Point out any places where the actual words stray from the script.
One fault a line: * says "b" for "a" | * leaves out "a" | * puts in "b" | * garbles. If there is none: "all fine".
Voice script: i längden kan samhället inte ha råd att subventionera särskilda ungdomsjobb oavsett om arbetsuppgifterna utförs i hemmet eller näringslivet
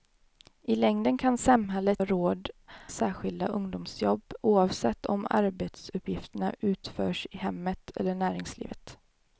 * leaves out "inte"
* leaves out "att subventionera"